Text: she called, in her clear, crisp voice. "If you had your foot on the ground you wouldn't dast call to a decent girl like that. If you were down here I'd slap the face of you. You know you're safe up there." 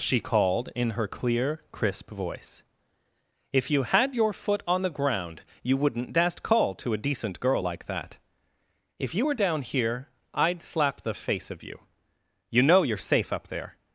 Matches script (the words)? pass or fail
pass